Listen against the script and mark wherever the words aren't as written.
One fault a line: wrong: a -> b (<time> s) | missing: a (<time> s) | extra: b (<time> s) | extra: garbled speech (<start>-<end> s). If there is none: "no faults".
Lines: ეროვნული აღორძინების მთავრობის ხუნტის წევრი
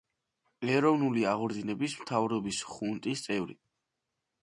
no faults